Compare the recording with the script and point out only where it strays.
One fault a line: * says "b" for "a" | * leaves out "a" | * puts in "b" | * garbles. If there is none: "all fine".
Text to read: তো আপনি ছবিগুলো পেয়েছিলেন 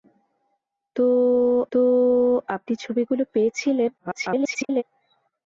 * puts in "তো"
* garbles